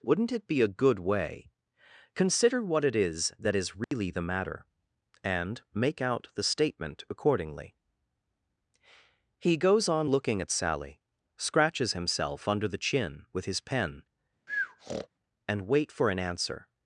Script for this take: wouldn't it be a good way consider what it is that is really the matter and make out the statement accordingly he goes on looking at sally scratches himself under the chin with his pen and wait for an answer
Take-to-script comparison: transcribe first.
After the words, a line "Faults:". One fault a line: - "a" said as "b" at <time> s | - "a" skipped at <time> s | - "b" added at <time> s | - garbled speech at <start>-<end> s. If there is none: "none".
wouldn't it be a good way consider what it is that is really the matter and make out the statement accordingly he goes on looking at sally scratches himself under the chin with his pen and wait for an answer
Faults:
none